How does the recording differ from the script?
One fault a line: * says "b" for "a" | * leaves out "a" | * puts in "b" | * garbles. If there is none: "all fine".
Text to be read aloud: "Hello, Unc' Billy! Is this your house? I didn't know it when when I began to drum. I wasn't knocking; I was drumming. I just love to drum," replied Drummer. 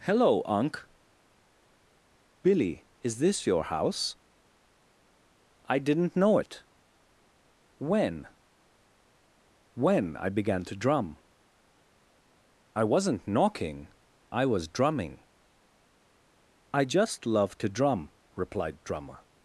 all fine